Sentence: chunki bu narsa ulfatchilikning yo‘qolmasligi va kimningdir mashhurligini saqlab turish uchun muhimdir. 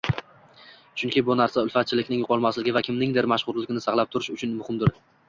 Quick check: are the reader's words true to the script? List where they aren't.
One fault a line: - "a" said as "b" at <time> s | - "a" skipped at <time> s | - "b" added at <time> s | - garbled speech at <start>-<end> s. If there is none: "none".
none